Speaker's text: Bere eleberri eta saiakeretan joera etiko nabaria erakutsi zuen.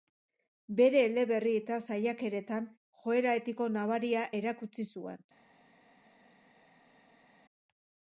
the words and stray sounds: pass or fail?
pass